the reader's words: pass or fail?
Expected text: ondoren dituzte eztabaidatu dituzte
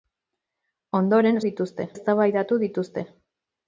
pass